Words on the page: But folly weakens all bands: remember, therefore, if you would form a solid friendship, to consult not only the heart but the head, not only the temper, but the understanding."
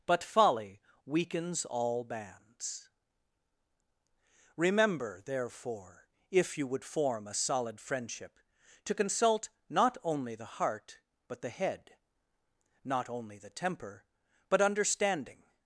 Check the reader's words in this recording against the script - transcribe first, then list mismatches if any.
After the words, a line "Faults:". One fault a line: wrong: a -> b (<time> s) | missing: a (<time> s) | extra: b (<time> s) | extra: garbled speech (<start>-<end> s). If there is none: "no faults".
But folly weakens all bands: remember, therefore, if you would form a solid friendship, to consult not only the heart but the head, not only the temper, but understanding."
Faults:
missing: the (14.6 s)